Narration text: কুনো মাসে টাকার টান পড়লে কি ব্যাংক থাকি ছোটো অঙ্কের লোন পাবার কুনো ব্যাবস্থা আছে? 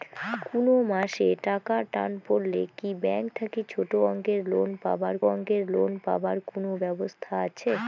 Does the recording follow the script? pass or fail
fail